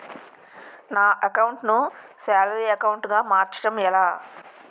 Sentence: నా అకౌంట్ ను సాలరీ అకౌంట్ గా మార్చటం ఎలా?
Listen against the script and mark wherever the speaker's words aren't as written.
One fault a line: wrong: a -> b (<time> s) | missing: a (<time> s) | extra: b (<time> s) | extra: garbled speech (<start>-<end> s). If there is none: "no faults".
no faults